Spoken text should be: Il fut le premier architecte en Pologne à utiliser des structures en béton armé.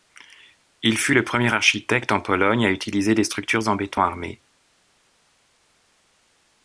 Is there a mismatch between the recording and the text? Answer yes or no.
no